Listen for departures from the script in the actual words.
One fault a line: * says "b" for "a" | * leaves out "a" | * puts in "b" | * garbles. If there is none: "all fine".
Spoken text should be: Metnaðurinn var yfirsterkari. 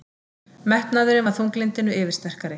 * puts in "þunglyndinu"